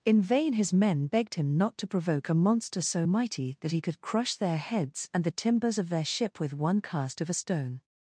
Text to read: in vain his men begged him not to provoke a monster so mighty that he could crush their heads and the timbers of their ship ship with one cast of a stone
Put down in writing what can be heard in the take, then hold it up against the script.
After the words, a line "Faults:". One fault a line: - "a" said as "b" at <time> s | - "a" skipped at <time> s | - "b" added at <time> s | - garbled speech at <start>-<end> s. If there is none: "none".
in vain his men begged him not to provoke a monster so mighty that he could crush their heads and the timbers of their ship with one cast of a stone
Faults:
- "ship" skipped at 6.4 s